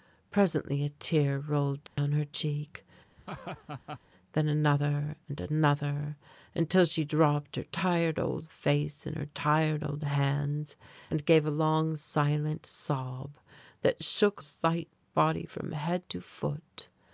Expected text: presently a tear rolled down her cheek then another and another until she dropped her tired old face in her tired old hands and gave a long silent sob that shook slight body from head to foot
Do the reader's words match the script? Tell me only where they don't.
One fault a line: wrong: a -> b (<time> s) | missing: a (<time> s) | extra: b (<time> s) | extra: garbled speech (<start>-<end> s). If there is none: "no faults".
no faults